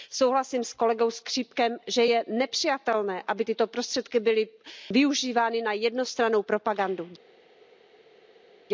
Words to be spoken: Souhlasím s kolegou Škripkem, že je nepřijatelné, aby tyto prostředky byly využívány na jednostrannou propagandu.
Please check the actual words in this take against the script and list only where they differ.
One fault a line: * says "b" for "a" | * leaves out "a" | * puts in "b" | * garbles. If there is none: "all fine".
all fine